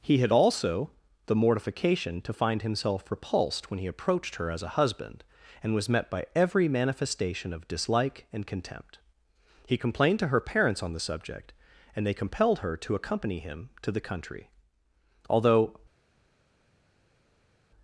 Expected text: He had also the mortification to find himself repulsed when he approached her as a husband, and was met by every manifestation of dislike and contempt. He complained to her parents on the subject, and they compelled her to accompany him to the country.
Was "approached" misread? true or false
false